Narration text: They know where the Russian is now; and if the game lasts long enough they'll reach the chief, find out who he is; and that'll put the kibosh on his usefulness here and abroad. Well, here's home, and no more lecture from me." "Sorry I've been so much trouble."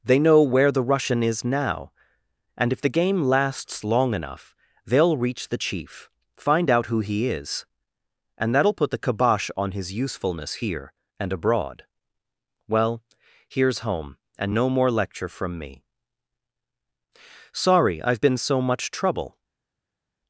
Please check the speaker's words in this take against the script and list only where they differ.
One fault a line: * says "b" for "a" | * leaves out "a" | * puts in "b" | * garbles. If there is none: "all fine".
all fine